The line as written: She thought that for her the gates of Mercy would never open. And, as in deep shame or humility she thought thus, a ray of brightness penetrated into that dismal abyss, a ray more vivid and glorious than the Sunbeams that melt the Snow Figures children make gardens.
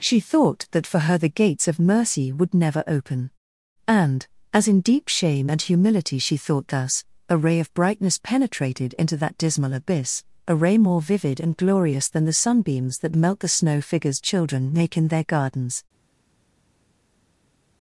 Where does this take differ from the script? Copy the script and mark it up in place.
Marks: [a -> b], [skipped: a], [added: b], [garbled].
She thought that for her the gates of Mercy would never open. And, as in deep shame [or -> and] humility she thought thus, a ray of brightness penetrated into that dismal abyss, a ray more vivid and glorious than the Sunbeams that melt the Snow Figures children make [added: in their] gardens.